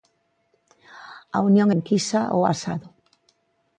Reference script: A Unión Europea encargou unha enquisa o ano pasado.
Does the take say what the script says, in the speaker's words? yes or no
no